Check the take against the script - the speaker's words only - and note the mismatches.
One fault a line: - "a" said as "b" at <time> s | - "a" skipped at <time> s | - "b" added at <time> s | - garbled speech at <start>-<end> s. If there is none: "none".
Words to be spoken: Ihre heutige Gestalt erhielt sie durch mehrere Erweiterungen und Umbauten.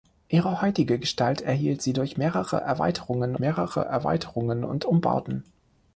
- "mehrere Erweiterungen" added at 3.4 s